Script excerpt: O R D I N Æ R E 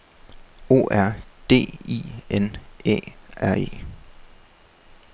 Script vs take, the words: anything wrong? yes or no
no